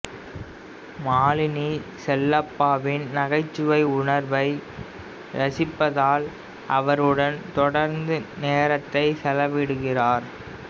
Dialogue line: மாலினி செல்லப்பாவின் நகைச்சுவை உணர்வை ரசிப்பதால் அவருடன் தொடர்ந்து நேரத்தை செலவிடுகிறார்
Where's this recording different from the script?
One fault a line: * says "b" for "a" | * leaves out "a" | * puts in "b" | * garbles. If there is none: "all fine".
all fine